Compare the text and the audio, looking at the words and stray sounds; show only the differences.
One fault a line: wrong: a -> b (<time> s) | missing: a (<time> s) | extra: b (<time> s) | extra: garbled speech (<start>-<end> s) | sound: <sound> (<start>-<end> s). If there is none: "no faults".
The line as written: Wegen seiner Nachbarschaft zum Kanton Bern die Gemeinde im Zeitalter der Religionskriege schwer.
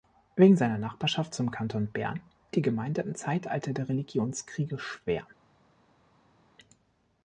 no faults